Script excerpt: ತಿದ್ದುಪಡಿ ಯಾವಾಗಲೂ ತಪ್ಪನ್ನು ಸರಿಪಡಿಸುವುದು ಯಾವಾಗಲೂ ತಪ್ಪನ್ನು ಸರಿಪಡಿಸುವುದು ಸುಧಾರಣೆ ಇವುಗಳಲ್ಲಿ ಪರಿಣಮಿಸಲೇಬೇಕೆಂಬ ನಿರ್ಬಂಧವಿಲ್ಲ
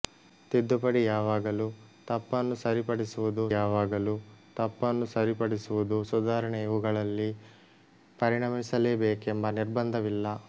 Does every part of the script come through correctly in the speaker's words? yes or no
yes